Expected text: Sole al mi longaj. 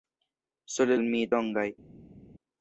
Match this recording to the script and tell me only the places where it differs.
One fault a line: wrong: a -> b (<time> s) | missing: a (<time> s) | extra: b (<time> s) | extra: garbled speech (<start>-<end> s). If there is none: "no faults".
no faults